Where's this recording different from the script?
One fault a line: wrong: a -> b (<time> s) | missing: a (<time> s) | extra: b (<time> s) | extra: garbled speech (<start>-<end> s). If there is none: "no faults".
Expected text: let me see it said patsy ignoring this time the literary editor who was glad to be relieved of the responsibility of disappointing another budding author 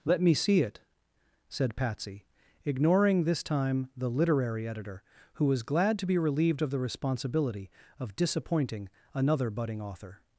no faults